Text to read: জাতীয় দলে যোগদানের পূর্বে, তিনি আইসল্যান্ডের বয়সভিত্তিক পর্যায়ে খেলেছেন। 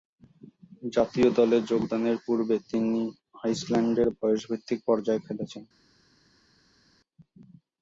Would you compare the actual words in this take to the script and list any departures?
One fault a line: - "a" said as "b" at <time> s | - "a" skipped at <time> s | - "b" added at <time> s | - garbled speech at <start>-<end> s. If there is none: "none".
none